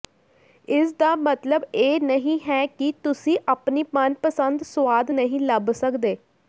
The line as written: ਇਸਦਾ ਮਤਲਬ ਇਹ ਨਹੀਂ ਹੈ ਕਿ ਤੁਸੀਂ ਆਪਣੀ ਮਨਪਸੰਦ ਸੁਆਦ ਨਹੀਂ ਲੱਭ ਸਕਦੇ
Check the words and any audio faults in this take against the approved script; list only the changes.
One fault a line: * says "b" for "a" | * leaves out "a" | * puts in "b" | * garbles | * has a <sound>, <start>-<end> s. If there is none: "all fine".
all fine